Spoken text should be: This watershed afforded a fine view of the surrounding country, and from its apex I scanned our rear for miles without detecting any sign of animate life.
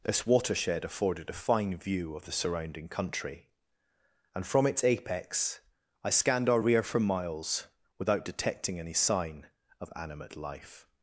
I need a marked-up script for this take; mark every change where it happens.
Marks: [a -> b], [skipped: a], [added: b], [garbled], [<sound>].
This watershed afforded a fine view of the surrounding country, and from its apex I scanned our rear for miles without detecting any sign of animate life.